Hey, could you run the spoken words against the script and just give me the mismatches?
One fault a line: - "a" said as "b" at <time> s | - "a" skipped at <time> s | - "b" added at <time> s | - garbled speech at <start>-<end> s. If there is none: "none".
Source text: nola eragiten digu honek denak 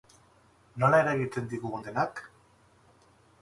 - "honek" skipped at 1.8 s